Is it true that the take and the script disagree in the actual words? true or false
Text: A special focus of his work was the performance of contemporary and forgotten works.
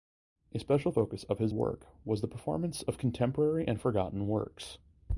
false